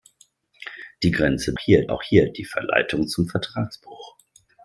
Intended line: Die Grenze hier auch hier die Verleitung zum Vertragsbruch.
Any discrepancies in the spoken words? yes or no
no